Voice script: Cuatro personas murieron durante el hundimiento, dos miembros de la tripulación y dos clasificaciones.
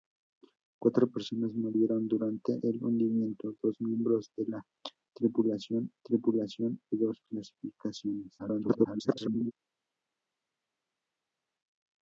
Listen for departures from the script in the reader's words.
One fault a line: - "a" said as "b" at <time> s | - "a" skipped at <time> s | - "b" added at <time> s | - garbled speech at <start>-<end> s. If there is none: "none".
- "tripulación" added at 6.0 s
- garbled speech at 8.4-9.5 s